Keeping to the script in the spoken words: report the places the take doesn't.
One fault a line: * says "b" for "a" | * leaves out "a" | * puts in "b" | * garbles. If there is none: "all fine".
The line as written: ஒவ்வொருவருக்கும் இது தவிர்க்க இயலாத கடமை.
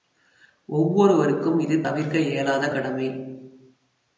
all fine